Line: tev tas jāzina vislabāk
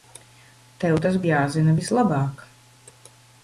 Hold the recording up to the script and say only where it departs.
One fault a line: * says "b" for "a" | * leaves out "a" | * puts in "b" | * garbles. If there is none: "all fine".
all fine